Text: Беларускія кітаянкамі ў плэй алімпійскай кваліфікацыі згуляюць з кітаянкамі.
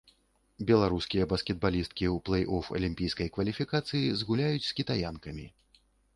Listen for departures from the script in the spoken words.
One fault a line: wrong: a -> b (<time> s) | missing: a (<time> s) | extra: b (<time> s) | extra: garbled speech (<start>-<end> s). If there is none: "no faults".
wrong: кітаянкамі -> баскетбалісткі (1.3 s)
extra: оф (2.6 s)